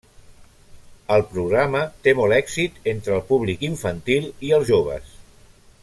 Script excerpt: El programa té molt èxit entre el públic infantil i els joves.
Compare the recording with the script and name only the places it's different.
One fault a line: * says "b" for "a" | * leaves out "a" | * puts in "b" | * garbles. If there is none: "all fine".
all fine